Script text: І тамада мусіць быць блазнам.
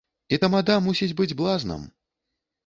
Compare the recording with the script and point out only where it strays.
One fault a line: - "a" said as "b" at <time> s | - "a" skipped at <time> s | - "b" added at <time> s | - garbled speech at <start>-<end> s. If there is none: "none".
none